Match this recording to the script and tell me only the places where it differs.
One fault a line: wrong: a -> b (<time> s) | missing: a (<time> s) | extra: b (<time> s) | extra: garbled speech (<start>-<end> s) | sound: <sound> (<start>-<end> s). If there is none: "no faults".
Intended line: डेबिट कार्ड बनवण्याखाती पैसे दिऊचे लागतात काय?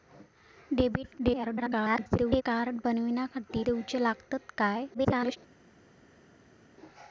extra: garbled speech (1.2-2.4 s)
missing: पैसे (3.6 s)
extra: garbled speech (4.9-5.4 s)